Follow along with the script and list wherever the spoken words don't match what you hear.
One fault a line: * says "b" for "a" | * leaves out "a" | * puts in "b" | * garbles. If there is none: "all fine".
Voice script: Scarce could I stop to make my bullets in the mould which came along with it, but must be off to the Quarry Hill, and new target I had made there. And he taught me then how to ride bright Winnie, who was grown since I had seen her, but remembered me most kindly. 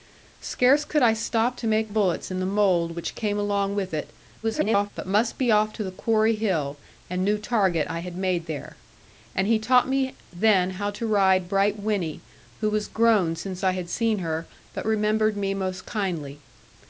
* leaves out "my"
* garbles